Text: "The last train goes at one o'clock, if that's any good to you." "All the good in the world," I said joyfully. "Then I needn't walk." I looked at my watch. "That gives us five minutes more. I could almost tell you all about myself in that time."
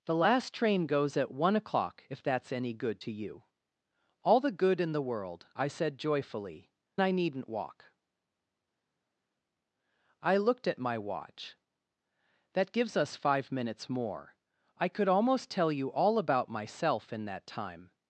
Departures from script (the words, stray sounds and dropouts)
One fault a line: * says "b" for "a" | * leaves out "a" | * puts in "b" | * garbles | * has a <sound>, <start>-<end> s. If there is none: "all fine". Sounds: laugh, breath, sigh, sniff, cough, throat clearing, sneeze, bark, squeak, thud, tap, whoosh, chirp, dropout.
* leaves out "Then"